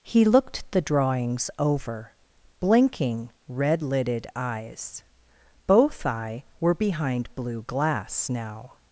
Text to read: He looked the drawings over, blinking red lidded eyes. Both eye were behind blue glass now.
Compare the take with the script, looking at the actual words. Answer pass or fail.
pass